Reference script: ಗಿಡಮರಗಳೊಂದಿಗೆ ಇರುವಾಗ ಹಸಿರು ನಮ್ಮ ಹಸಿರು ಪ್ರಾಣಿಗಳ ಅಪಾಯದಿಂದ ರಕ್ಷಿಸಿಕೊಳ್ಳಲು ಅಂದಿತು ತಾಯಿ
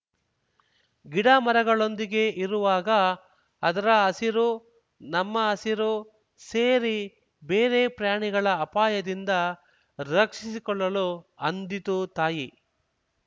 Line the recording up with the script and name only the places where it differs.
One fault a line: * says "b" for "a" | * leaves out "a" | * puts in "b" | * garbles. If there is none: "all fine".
* puts in "ಅದರ"
* puts in "ಸೇರಿ ಬೇರೆ"